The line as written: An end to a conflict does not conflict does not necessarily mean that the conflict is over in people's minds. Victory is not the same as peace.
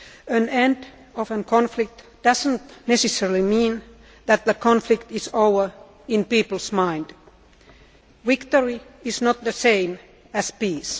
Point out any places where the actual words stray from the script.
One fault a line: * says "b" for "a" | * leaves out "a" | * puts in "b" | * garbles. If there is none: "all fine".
* leaves out "conflict does not"